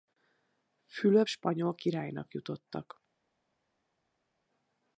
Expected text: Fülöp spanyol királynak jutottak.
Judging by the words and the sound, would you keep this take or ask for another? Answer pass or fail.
pass